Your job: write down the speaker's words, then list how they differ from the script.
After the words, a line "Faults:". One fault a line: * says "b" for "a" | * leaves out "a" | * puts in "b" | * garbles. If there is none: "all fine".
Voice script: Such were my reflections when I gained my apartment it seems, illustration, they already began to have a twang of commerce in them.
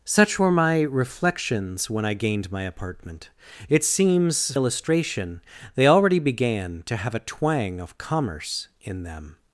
Such were my reflections when I gained my apartment it seems, illustration, they already began to have a twang of commerce in them.
Faults:
all fine